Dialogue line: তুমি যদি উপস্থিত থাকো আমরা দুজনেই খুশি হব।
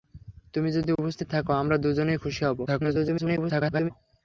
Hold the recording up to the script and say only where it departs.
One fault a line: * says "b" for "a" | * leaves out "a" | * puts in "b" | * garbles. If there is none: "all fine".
* garbles